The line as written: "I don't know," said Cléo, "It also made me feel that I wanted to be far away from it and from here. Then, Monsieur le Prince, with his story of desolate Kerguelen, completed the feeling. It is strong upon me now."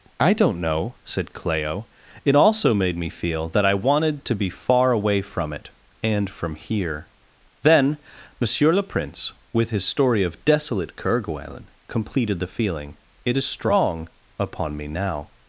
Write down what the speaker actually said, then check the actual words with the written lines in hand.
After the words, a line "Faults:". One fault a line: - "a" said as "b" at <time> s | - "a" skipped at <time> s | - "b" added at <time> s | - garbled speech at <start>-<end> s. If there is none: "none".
"I don't know," said Cléo, "It also made me feel that I wanted to be far away from it and from here. Then, Monsieur le Prince, with his story of desolate Kerguelen, completed the feeling. It is strong upon me now."
Faults:
none